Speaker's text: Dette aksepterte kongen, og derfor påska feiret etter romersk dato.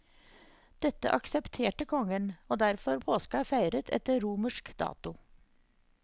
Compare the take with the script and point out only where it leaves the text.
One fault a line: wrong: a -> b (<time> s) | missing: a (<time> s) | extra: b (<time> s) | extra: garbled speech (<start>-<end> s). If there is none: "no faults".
no faults